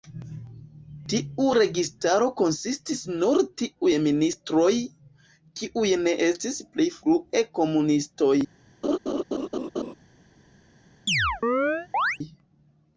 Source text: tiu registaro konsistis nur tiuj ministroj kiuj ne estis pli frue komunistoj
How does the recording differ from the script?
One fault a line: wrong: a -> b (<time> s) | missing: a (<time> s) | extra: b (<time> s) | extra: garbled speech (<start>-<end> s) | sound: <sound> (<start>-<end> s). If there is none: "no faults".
sound: laugh (8.8-9.9 s)
sound: chirp (11.1-12.2 s)